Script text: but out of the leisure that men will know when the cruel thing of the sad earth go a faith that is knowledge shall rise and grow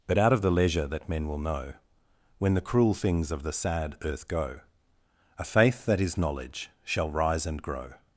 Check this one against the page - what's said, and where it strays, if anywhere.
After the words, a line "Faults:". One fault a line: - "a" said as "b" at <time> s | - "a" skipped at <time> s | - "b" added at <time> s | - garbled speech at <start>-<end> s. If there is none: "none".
but out of the leisure that men will know when the cruel things of the sad earth go a faith that is knowledge shall rise and grow
Faults:
- "thing" said as "things" at 2.9 s